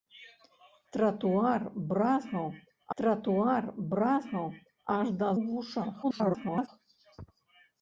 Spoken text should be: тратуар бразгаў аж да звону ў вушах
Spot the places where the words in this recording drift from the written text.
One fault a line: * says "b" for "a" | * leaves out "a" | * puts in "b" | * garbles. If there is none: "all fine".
* puts in "тратуар бразгаў"
* leaves out "звону"
* garbles